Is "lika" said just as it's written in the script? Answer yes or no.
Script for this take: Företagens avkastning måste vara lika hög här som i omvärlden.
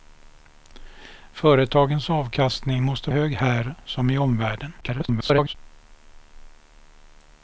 no